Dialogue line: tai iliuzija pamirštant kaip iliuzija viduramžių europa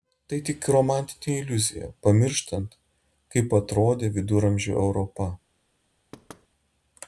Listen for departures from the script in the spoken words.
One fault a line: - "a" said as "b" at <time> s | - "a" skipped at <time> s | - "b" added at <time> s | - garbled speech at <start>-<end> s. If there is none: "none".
- "tik romantinė" added at 0.5 s
- "iliuzija" said as "atrodė" at 3.6 s